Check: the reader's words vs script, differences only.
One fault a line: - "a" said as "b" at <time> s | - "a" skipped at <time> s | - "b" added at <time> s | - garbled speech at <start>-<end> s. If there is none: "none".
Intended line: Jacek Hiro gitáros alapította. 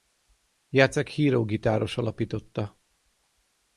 none